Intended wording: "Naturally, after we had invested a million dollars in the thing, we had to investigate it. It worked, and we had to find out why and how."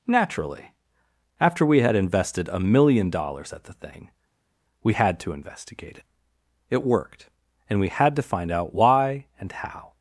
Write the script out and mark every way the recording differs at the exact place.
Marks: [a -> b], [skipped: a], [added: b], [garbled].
"Naturally, after we had invested a million dollars [in -> at] the thing, we had to investigate it. It worked, and we had to find out why and how."